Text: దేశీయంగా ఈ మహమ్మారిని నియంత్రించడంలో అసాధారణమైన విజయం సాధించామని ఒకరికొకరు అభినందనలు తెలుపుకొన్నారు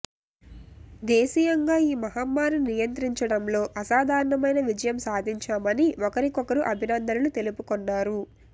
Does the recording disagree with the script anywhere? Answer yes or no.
no